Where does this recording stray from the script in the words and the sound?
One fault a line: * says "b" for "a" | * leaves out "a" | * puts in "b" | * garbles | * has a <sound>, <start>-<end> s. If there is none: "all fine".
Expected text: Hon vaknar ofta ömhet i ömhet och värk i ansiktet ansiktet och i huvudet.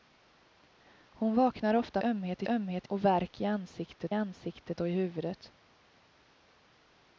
all fine